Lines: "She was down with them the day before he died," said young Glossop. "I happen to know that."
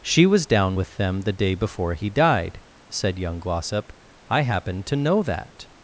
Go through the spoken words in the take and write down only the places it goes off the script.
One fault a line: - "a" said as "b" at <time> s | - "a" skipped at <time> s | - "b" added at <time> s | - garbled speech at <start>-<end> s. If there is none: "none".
none